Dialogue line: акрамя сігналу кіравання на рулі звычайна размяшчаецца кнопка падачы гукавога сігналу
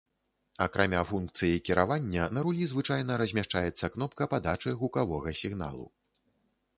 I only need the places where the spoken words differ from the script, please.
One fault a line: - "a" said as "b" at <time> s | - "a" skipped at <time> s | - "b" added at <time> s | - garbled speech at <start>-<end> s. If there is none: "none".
- "сігналу" said as "функцыі" at 1.1 s